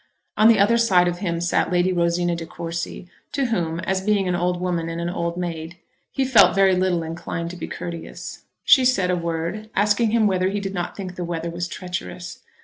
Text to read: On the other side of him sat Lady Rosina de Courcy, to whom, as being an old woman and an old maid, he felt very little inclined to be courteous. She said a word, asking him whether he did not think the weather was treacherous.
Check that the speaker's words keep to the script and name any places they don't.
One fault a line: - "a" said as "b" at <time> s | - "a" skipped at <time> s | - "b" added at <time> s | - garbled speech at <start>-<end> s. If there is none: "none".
none